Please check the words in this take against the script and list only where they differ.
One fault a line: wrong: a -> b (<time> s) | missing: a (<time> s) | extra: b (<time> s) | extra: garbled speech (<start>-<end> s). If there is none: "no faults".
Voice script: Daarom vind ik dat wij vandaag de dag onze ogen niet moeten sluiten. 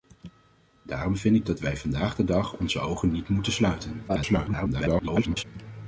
extra: garbled speech (4.1-5.4 s)